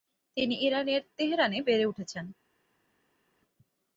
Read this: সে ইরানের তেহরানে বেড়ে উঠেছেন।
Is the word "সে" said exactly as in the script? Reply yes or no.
no